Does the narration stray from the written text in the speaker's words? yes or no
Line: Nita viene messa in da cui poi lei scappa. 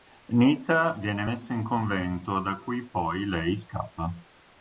yes